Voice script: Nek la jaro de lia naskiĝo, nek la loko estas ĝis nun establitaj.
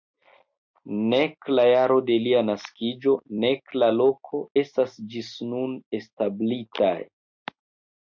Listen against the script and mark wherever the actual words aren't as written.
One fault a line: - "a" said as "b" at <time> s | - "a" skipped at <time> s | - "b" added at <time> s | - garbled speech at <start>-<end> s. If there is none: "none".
none